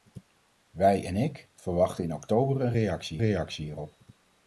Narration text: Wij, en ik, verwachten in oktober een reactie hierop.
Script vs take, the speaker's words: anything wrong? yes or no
yes